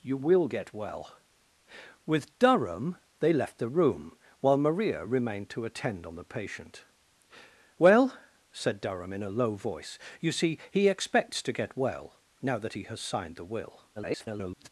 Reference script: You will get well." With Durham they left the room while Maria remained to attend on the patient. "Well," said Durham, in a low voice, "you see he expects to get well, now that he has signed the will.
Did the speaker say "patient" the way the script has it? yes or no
yes